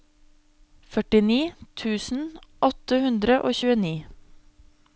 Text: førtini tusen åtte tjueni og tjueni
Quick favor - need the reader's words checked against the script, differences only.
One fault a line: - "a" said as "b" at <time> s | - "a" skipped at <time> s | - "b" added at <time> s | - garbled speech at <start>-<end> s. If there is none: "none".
- "tjueni" said as "hundre" at 3.1 s